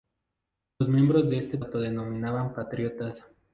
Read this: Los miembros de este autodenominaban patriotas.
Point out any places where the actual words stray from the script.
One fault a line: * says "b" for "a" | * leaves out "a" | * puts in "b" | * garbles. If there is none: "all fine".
all fine